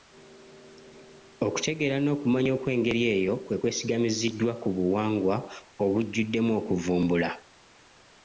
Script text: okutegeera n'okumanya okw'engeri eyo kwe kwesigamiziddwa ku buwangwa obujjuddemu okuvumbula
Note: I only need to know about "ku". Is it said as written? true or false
true